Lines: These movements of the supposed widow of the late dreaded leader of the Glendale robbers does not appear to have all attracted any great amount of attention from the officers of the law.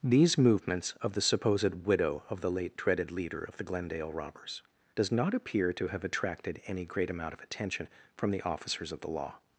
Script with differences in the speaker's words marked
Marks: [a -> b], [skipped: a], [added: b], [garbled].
These movements of the supposed widow of the late dreaded leader of the Glendale robbers does not appear to have [skipped: all] attracted any great amount of attention from the officers of the law.